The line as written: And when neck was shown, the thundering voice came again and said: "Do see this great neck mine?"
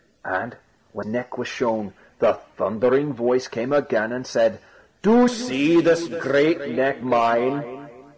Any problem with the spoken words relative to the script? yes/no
no